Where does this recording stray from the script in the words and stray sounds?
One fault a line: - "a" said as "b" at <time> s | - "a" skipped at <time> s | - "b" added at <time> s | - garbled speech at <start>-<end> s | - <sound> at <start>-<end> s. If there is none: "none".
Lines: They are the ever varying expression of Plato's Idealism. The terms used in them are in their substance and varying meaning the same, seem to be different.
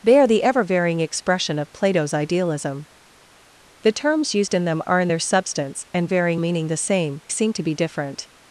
none